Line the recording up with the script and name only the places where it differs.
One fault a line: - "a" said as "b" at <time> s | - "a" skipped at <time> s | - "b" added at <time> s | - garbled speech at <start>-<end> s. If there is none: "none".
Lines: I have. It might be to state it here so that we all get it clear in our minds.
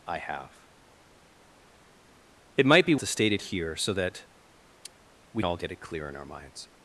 none